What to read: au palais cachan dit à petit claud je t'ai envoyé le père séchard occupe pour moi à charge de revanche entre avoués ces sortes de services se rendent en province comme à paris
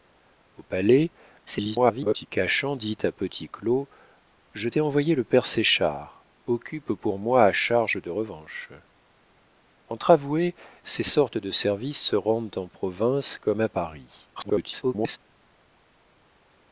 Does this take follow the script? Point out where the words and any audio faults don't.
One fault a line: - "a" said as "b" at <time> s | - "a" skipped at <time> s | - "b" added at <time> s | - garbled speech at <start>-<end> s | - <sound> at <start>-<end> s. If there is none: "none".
- garbled speech at 1.5-2.3 s
- garbled speech at 14.4-15.2 s